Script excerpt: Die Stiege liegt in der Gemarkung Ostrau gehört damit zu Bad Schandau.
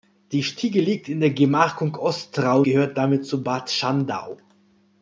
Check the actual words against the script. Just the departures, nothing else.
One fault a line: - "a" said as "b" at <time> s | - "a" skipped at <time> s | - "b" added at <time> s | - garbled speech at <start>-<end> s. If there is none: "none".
none